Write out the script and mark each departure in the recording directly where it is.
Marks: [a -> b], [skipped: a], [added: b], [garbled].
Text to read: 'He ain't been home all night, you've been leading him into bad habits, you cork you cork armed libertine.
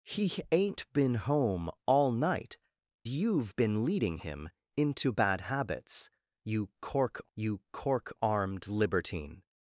'He ain't been home all night, you've been leading him into bad habits, you cork you cork armed libertine.